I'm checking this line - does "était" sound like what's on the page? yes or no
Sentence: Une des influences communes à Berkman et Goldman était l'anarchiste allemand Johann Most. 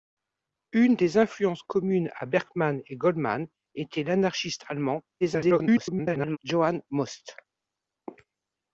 yes